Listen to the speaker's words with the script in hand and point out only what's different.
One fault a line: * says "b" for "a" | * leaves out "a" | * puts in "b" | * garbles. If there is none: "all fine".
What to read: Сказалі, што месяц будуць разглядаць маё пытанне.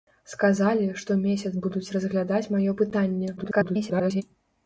* garbles